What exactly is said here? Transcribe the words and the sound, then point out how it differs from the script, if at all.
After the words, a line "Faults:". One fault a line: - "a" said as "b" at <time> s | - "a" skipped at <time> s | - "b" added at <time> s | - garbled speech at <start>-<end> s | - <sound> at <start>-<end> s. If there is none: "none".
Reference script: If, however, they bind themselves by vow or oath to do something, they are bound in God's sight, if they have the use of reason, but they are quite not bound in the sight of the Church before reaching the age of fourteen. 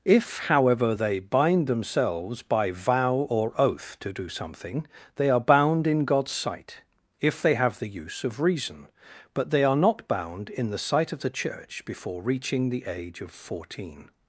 If, however, they bind themselves by vow or oath to do something, they are bound in God's sight, if they have the use of reason, but they are not bound in the sight of the Church before reaching the age of fourteen.
Faults:
- "quite" skipped at 9.8 s